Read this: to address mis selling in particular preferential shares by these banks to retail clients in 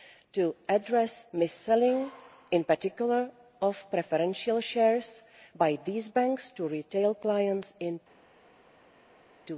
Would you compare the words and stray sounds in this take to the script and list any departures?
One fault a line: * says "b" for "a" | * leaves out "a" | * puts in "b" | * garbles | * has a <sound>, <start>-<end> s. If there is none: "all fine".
* puts in "of"